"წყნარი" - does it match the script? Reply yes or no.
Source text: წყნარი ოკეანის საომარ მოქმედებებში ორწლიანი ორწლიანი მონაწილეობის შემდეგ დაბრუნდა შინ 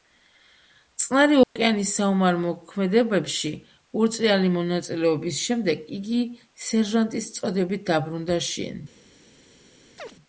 yes